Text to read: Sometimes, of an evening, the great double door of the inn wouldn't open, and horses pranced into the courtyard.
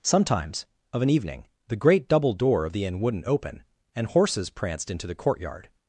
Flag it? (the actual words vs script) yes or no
no